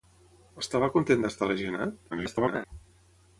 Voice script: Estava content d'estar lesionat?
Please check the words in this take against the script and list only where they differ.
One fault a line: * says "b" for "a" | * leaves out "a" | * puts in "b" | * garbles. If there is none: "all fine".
* garbles